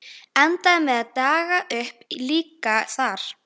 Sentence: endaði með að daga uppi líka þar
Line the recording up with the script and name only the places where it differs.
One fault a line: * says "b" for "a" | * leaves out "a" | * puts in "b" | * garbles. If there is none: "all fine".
all fine